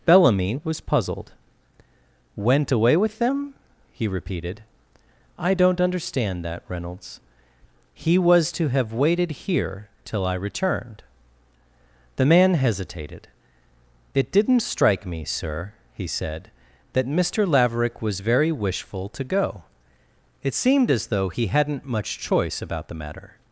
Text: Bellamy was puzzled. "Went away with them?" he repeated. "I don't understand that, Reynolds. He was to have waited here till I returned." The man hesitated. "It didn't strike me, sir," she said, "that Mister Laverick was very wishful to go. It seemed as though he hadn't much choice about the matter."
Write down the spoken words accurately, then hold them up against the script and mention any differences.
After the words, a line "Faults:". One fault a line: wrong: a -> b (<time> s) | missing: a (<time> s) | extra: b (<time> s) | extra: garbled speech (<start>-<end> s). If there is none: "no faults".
Bellamy was puzzled. "Went away with them?" he repeated. "I don't understand that, Reynolds. He was to have waited here till I returned." The man hesitated. "It didn't strike me, sir," he said, "that Mister Laverick was very wishful to go. It seemed as though he hadn't much choice about the matter."
Faults:
wrong: she -> he (15.9 s)